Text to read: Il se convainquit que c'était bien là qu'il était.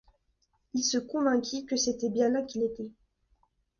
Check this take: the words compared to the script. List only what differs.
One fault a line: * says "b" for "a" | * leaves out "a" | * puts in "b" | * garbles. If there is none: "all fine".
all fine